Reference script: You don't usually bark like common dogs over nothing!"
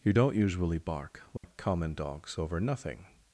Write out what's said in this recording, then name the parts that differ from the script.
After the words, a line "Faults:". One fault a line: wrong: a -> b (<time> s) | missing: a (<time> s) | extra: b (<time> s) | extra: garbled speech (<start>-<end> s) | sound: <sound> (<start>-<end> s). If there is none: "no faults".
You don't usually bark like common dogs over nothing!"
Faults:
sound: dropout (1.4-1.4 s)